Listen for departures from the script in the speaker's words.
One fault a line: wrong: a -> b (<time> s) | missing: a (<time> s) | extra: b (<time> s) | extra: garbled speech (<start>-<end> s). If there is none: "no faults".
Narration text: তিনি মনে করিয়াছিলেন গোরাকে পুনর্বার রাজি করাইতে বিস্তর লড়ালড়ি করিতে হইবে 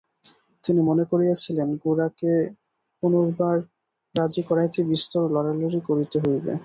no faults